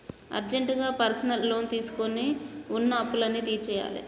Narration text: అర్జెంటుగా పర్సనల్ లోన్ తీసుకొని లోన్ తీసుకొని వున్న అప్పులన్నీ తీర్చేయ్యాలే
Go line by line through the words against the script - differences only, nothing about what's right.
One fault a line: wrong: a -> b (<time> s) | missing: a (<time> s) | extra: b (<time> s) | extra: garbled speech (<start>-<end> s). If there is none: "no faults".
missing: లోన్ తీసుకొని (2.2 s)